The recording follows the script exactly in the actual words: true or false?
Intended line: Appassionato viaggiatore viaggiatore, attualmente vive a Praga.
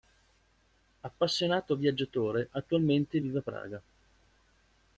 false